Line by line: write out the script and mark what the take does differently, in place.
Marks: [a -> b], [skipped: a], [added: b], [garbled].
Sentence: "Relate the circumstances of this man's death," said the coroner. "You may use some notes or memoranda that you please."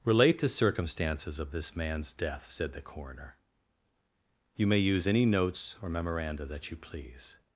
"Relate the circumstances of this man's death," said the coroner. "You may use [some -> any] notes or memoranda that you please."